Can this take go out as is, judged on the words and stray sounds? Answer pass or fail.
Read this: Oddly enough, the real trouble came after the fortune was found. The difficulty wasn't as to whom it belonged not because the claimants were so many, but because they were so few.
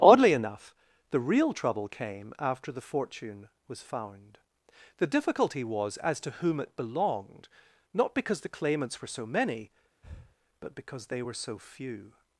fail